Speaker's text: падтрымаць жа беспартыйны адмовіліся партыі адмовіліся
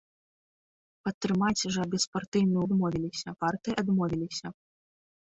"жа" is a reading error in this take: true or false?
false